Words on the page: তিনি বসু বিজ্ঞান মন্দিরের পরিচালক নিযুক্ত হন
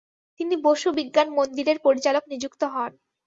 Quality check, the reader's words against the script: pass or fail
pass